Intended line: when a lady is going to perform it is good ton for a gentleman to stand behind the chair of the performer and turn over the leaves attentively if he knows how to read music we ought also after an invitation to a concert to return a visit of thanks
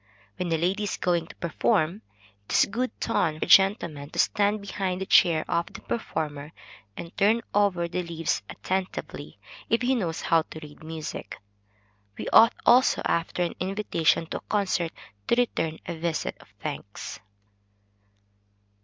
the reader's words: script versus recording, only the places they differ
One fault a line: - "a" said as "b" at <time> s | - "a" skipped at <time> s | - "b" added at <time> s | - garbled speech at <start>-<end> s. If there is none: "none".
- "for" skipped at 3.4 s